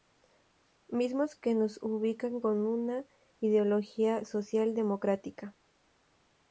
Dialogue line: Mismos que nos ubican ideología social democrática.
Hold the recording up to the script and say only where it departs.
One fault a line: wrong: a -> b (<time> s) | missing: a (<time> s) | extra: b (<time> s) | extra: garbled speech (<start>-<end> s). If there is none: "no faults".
extra: con una (2.4 s)